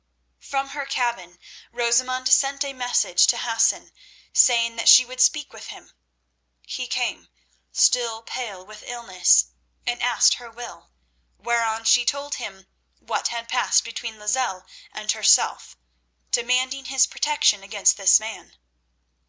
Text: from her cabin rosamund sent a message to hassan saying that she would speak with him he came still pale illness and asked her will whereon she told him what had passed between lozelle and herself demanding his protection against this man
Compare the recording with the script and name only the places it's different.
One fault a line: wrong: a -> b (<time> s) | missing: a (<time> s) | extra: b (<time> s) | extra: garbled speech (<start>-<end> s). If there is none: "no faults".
extra: with (8.6 s)